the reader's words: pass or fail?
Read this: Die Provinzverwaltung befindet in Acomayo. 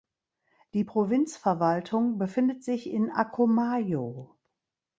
fail